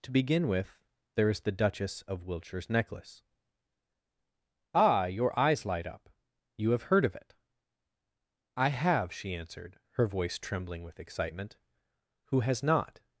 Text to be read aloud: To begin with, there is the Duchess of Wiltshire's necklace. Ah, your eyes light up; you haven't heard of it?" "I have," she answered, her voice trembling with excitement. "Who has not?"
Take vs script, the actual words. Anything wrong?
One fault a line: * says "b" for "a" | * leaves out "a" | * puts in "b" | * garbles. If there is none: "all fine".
* says "have" for "haven't"